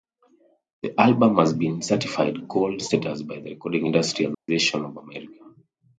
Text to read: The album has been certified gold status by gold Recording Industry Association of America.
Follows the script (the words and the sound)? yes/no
no